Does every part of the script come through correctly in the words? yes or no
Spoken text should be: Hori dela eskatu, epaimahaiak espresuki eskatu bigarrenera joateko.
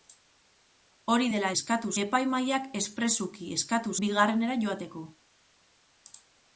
yes